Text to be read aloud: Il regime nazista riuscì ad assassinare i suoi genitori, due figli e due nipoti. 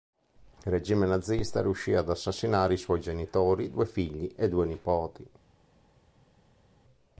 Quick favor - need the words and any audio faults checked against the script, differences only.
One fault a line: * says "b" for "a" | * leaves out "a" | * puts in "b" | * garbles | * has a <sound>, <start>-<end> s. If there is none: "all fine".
all fine